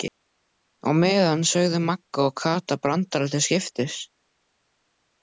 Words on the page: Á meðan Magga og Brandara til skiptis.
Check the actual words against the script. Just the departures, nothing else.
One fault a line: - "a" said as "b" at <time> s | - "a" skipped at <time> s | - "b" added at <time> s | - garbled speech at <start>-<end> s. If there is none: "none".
- "sögðu" added at 1.5 s
- "Kata" added at 2.4 s